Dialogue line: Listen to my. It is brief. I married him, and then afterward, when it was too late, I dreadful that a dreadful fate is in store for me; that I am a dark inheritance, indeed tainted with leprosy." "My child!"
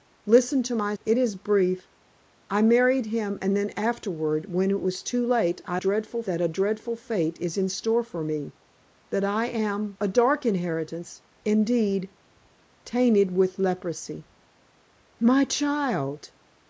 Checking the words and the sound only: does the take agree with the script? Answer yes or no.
yes